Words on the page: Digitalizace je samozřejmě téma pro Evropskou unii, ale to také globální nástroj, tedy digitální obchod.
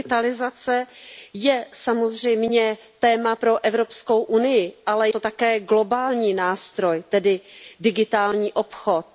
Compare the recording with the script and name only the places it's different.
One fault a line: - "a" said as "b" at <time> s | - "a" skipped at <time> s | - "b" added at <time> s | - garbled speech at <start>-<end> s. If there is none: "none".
none